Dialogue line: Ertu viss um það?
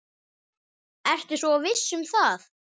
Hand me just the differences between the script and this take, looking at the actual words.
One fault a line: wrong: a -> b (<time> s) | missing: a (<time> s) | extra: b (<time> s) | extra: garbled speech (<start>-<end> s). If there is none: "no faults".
extra: svo (1.4 s)